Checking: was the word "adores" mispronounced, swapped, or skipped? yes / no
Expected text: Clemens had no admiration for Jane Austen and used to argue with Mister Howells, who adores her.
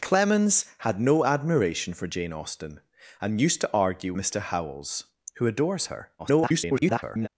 no